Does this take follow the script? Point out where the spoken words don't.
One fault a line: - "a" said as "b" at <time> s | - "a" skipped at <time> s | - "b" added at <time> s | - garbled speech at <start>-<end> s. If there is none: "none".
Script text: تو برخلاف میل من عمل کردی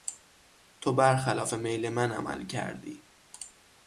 none